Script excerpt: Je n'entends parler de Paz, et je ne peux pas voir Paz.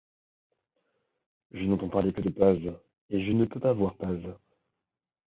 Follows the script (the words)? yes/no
no